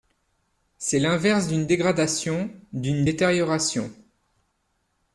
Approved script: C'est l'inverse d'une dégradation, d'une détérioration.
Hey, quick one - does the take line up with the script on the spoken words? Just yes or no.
yes